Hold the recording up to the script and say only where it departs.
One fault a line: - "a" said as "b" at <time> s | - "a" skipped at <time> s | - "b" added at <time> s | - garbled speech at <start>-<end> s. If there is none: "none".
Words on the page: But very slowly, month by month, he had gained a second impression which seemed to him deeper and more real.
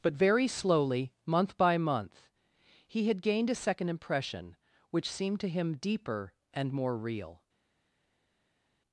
none